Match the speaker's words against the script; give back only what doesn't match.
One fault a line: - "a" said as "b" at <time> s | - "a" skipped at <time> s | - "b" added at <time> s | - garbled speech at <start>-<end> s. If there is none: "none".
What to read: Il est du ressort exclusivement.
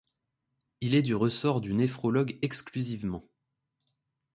- "du néphrologue" added at 1.6 s